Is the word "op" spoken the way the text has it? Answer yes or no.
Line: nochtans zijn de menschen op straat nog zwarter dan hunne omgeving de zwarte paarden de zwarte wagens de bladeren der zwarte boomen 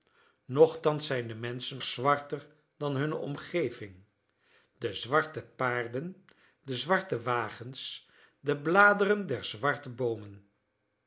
no